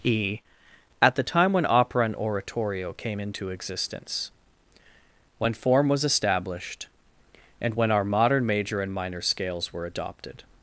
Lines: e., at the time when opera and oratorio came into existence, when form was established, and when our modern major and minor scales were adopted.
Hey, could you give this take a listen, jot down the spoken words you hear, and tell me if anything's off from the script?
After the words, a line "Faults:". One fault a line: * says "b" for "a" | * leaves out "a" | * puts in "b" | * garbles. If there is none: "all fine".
e., at the time when opera and oratorio came into existence, when form was established, and when our modern major and minor scales were adopted.
Faults:
all fine